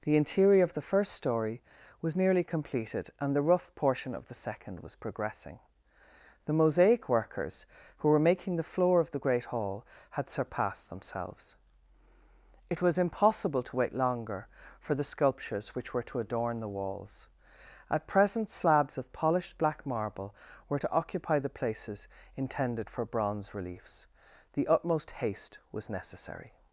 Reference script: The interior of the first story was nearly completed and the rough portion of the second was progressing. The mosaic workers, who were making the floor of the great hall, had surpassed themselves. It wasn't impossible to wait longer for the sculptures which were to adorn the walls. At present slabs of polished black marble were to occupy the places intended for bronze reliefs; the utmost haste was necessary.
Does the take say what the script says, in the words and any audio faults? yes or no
no